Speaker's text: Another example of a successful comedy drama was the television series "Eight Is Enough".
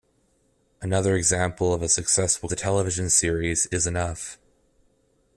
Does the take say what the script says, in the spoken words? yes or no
no